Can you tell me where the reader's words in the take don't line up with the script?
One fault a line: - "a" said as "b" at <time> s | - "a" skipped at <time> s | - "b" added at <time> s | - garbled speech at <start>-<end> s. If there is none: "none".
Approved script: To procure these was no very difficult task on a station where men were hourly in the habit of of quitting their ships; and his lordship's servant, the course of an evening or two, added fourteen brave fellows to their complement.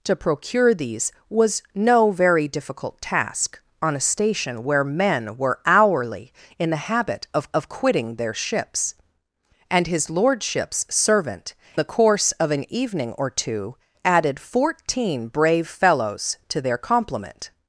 none